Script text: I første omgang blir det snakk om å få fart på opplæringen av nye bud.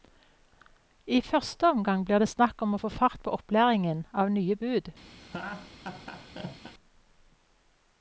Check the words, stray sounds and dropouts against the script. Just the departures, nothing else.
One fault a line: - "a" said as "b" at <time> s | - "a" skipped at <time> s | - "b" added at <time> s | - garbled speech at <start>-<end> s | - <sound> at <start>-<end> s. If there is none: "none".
- laugh at 5.2-6.7 s